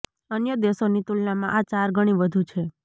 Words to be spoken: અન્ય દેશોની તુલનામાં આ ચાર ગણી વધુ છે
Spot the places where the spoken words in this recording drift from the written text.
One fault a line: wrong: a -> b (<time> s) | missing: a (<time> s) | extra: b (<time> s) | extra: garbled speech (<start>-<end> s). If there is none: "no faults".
no faults